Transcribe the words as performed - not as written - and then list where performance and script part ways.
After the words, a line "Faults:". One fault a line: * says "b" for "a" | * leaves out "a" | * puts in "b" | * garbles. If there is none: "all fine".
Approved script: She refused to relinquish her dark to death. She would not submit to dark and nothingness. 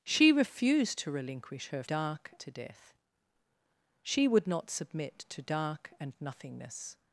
She refused to relinquish her dark to death. She would not submit to dark and nothingness.
Faults:
all fine